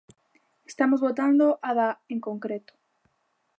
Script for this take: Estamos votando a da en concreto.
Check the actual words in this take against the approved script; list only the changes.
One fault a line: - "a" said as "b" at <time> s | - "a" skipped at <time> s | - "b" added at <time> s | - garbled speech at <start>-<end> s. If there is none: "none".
none